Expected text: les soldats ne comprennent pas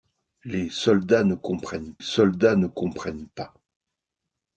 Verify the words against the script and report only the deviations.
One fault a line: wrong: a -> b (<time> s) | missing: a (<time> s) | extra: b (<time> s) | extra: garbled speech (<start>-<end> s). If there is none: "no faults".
extra: soldats ne comprennent (2.0 s)